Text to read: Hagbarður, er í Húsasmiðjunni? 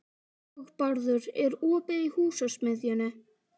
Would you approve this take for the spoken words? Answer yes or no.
no